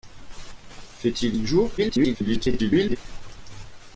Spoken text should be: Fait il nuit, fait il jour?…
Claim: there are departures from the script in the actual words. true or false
true